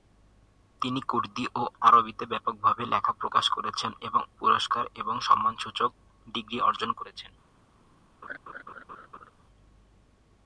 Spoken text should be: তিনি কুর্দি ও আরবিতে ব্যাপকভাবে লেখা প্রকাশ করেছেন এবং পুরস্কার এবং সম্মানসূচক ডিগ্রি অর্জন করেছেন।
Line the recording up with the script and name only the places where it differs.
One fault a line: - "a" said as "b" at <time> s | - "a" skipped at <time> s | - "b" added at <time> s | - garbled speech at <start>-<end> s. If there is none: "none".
none